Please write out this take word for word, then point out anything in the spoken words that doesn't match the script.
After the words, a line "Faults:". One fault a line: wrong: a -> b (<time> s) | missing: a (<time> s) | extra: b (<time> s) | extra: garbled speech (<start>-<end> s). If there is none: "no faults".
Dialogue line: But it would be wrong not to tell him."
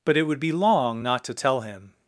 But it would be long not to tell him."
Faults:
wrong: wrong -> long (0.5 s)